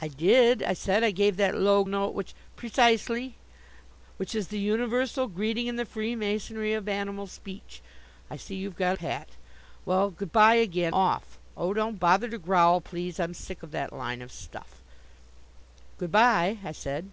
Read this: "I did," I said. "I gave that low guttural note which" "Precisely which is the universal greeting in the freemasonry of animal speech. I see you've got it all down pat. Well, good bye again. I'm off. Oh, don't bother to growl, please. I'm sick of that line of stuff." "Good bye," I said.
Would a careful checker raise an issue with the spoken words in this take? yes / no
yes